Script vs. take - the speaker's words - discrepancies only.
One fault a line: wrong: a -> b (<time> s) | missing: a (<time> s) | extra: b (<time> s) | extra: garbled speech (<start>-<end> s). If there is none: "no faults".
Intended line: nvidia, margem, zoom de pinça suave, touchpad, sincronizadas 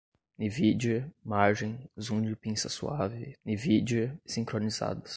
wrong: touchpad -> nvidia (3.5 s)